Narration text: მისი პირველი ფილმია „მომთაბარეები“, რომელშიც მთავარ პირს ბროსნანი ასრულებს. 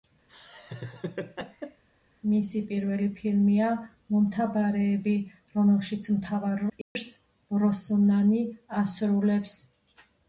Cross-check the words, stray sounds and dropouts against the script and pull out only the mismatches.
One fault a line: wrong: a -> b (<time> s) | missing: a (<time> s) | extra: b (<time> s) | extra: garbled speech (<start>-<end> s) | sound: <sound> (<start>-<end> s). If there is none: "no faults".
sound: laugh (0.3-1.8 s)
sound: dropout (6.8-7.0 s)